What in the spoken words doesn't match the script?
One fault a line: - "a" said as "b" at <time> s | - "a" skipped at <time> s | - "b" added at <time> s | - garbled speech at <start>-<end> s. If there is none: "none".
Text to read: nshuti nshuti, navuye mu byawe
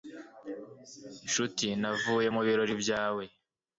- "nshuti" skipped at 1.7 s
- "birori" added at 2.5 s